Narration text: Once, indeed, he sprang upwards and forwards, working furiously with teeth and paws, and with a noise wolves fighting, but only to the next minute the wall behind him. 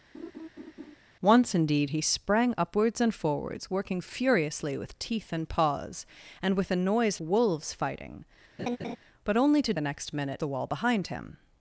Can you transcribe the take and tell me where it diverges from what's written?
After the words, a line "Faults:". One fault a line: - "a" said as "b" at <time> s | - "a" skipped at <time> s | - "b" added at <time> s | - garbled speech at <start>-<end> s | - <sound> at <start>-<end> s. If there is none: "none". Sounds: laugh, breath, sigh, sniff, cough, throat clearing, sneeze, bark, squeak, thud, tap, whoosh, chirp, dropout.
Once, indeed, he sprang upwards and forwards, working furiously with teeth and paws, and with a noise wolves fighting, but only to the next minute the wall behind him.
Faults:
- laugh at 0.1-1.0 s
- laugh at 8.6-9.0 s